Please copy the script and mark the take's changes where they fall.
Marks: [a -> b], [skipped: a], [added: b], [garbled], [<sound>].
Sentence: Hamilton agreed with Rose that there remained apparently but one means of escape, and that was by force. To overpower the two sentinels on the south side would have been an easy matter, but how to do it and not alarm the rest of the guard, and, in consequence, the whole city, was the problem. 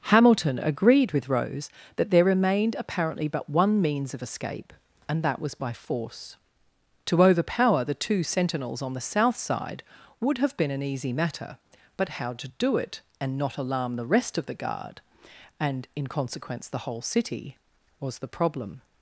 Hamilton agreed with Rose that there remained apparently but one means of escape, and that was by force. To overpower the two sentinels on the south side would have been an easy matter, but how to do it and not alarm the rest of the guard, and, in consequence, the whole city, was the problem.